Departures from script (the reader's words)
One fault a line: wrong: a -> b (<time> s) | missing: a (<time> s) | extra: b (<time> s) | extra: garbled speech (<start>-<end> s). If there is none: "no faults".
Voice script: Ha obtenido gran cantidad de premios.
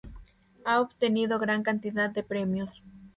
no faults